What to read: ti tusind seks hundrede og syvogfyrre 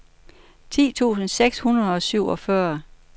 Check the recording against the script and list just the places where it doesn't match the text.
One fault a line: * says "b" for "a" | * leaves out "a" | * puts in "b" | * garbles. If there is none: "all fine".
all fine